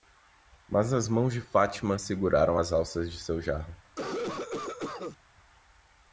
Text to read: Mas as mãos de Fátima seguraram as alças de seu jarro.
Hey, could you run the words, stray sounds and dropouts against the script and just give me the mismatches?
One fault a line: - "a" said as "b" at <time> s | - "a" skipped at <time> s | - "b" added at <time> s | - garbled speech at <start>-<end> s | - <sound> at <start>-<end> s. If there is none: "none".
- cough at 3.8-5.2 s